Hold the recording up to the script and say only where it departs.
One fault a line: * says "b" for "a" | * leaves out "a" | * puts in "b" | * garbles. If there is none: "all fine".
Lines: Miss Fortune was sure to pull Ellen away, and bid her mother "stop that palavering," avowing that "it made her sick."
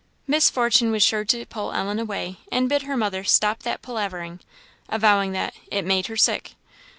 all fine